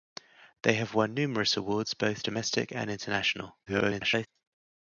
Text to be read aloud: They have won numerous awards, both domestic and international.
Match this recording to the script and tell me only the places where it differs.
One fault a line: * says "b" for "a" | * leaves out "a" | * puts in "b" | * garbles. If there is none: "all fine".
* garbles